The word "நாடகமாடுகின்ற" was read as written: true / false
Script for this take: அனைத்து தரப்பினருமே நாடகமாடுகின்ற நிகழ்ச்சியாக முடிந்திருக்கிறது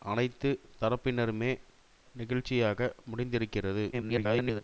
false